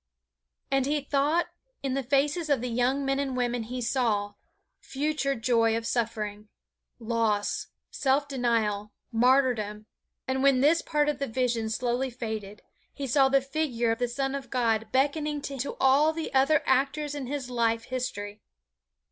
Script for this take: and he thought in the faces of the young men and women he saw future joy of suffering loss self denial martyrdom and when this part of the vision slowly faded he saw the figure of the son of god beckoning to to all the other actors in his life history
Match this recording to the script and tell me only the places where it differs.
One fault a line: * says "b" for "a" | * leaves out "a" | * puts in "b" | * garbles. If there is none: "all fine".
all fine